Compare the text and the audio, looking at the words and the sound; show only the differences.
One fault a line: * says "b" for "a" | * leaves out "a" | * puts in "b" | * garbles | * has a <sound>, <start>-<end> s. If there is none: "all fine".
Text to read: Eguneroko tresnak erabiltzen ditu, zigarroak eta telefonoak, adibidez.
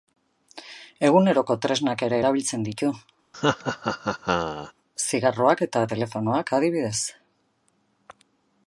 * puts in "ere"
* has a laugh, 3.3-4.7 s